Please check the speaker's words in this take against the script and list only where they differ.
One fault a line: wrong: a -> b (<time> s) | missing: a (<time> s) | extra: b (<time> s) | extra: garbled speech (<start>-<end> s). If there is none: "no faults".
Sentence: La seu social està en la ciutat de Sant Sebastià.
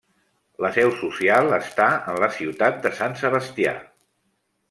no faults